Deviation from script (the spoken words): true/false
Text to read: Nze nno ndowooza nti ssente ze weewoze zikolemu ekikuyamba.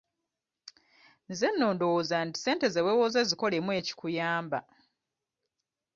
false